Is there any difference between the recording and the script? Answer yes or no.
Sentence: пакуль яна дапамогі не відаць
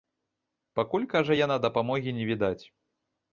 yes